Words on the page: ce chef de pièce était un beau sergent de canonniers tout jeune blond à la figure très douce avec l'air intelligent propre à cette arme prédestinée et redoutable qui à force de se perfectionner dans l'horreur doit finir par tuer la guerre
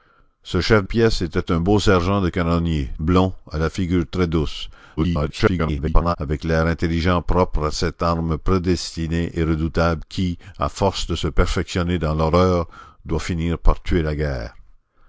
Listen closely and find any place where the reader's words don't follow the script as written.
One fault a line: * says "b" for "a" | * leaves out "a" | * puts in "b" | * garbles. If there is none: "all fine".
* leaves out "de"
* leaves out "tout jeune"
* garbles